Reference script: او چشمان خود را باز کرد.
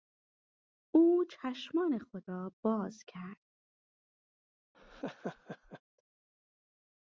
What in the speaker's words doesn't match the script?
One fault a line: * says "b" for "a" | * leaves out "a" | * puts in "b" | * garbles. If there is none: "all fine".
all fine